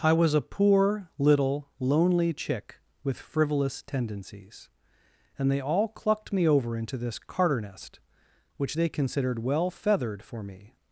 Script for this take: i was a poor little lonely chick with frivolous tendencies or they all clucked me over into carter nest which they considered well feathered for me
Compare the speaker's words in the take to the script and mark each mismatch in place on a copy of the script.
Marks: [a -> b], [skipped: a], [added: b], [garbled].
i was a poor little lonely chick with frivolous tendencies [or -> and] they all clucked me over into [added: this] carter nest which they considered well feathered for me